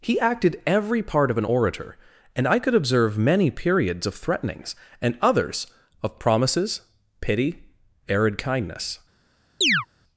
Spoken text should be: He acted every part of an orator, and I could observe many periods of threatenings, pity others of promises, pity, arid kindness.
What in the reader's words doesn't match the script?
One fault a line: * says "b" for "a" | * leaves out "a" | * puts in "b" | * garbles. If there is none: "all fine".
* says "and" for "pity"